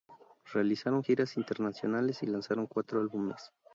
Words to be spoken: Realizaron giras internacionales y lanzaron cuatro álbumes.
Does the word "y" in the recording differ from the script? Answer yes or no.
no